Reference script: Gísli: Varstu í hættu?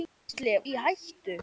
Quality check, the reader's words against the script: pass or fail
fail